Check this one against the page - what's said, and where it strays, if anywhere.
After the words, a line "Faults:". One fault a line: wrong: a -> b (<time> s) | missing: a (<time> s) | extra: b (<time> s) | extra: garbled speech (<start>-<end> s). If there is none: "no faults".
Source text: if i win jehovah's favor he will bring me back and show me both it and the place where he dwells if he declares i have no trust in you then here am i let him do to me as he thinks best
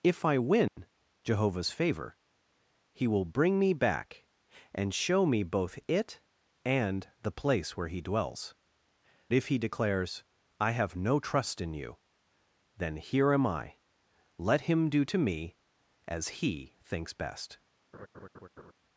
if i win jehovah's favor he will bring me back and show me both it and the place where he dwells if he declares i have no trust in you then here am i let him do to me as he thinks best
Faults:
no faults